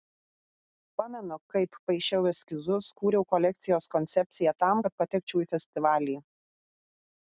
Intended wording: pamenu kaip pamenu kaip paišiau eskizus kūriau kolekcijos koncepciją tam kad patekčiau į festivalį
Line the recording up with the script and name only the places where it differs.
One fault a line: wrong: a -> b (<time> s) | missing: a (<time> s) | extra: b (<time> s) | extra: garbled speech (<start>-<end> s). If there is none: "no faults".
missing: pamenu kaip (1.8 s)